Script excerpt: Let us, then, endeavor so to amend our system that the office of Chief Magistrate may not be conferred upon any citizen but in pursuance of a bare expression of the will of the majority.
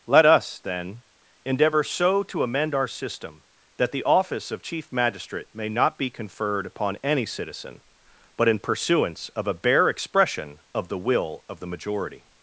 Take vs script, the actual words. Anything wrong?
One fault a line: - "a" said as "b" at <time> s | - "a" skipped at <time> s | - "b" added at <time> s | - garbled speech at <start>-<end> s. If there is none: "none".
none